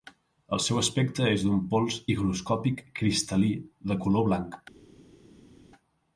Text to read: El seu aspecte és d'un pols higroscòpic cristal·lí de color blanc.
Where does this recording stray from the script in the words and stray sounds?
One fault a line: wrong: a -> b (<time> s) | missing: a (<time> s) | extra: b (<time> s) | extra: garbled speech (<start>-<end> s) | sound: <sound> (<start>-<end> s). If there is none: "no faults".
no faults